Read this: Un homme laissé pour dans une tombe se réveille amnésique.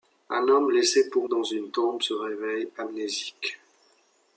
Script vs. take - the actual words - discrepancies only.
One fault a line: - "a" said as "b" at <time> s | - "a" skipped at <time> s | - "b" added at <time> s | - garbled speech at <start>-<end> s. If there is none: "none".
none